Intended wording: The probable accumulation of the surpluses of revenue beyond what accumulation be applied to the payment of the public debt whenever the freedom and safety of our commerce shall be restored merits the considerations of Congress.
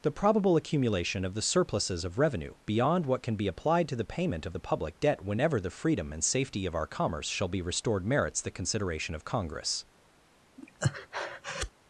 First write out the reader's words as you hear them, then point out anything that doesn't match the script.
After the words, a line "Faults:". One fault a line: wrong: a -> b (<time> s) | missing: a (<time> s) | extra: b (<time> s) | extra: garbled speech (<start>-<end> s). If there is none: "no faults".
The probable accumulation of the surpluses of revenue beyond what can be applied to the payment of the public debt whenever the freedom and safety of our commerce shall be restored merits the consideration of Congress.
Faults:
wrong: accumulation -> can (3.2 s)
wrong: considerations -> consideration (8.5 s)